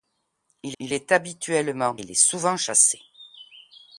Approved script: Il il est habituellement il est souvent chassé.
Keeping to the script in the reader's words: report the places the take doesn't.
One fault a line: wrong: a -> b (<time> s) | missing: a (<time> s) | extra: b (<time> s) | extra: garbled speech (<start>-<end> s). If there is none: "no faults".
no faults